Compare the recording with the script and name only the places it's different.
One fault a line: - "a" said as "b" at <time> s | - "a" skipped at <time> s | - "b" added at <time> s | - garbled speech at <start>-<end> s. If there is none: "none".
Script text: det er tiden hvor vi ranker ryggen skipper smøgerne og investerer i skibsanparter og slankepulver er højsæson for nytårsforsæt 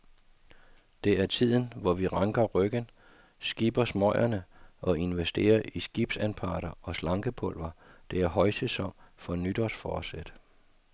- "det" added at 8.1 s